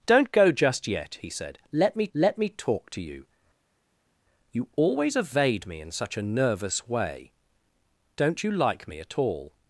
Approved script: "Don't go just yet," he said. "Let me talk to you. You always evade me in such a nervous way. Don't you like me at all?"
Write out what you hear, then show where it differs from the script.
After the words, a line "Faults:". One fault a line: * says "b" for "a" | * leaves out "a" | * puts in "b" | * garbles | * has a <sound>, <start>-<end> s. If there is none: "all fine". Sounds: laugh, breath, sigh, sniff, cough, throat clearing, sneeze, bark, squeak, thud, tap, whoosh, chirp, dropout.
"Don't go just yet," he said. "Let me let me talk to you. You always evade me in such a nervous way. Don't you like me at all?"
Faults:
* puts in "let me"